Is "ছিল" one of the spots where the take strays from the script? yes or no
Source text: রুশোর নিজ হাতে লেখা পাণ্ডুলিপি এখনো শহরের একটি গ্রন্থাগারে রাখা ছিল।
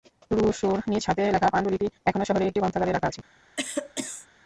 yes